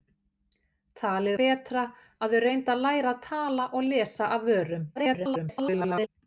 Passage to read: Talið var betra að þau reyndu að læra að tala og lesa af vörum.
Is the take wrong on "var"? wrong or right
wrong